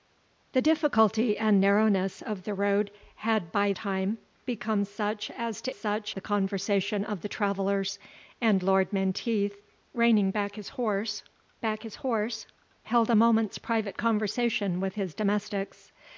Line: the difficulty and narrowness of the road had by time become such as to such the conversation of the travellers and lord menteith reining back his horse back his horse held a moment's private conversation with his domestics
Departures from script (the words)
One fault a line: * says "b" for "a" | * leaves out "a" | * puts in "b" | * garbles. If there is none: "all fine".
all fine